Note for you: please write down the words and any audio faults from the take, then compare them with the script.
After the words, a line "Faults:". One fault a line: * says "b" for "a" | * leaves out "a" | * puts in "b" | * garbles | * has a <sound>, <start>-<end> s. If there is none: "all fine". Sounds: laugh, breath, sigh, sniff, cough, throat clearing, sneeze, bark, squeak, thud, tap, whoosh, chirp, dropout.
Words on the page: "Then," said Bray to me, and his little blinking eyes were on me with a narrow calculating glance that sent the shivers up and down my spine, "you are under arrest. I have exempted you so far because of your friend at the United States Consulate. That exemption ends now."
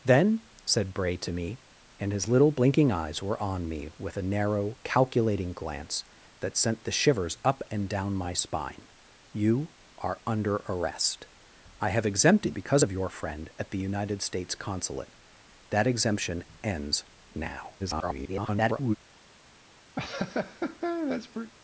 "Then," said Bray to me, and his little blinking eyes were on me with a narrow calculating glance that sent the shivers up and down my spine, "you are under arrest. I have exempted because of your friend at the United States Consulate. That exemption ends now." [garbled]
Faults:
* leaves out "you so far"
* garbles
* has a laugh, 20.0-21.5 s